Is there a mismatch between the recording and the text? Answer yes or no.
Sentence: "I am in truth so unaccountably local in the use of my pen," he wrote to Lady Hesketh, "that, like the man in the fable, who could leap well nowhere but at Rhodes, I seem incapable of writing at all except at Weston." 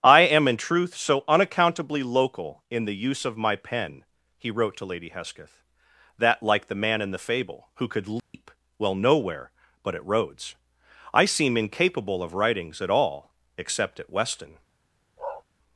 yes